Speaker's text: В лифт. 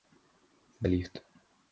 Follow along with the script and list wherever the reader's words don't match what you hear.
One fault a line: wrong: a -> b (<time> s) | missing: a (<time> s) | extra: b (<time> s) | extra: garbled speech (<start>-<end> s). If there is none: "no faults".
no faults